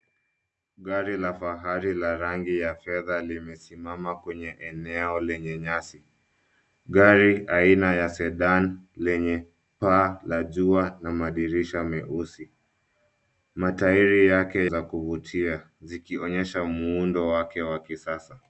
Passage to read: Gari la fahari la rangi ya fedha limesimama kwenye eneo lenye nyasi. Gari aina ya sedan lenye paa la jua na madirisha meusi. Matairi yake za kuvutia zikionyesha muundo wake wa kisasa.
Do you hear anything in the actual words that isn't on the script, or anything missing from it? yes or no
no